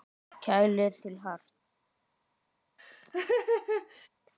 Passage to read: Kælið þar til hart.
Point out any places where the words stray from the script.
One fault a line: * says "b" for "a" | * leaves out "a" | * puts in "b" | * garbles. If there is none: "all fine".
* leaves out "þar"